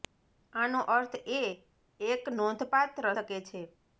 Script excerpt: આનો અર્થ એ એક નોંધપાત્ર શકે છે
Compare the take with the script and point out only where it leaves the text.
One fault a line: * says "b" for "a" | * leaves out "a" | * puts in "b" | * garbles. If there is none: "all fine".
all fine